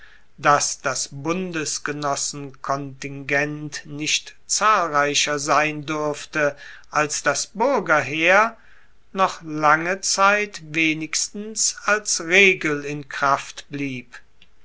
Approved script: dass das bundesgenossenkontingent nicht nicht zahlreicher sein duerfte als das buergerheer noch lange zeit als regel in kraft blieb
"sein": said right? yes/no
yes